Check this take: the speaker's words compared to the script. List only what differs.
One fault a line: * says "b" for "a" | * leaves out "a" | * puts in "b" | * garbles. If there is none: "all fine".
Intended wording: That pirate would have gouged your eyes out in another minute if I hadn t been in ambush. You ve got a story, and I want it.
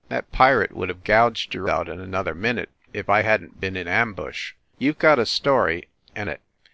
* leaves out "eyes"
* leaves out "I want"